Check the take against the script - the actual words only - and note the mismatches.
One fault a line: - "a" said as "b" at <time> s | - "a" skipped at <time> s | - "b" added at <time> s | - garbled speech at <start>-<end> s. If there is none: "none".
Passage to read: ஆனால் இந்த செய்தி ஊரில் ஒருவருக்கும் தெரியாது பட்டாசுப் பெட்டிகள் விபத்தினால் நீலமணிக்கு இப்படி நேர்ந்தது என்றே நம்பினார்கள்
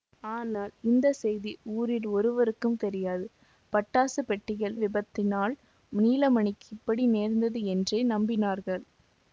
none